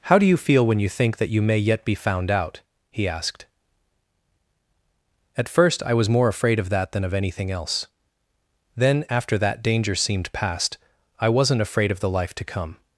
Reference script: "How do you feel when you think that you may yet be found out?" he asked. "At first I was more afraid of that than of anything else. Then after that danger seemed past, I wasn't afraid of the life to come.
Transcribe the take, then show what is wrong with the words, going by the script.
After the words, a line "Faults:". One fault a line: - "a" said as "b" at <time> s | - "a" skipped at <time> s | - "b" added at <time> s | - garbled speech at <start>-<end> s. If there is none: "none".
"How do you feel when you think that you may yet be found out?" he asked. "At first I was more afraid of that than of anything else. Then after that danger seemed past, I wasn't afraid of the life to come.
Faults:
none